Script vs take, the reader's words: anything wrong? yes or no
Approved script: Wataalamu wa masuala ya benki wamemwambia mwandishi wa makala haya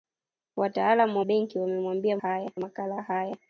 yes